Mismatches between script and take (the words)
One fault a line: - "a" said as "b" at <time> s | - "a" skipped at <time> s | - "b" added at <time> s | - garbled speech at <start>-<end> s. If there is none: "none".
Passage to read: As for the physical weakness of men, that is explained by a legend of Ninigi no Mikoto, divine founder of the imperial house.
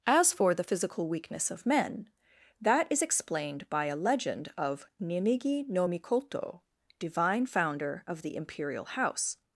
none